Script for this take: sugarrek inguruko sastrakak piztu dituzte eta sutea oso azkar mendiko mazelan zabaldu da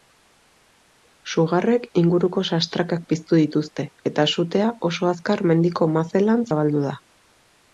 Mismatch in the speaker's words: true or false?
false